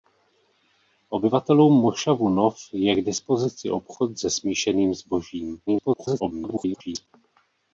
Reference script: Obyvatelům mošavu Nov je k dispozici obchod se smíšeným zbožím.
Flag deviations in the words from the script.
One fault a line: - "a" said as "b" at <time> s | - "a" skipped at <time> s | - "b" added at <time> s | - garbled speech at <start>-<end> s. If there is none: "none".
- garbled speech at 5.7-7.1 s